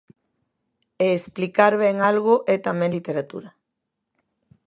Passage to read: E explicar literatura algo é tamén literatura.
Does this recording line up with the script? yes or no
no